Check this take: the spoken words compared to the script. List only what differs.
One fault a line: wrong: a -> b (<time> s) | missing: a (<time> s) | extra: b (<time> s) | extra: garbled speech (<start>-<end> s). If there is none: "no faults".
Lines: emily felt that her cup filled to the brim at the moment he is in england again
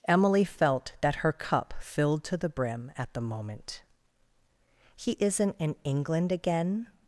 wrong: is -> isn't (5.2 s)